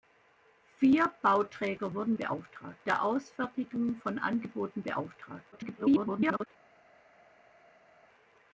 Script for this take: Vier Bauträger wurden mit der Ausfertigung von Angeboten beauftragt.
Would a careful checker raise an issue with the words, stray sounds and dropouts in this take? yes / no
yes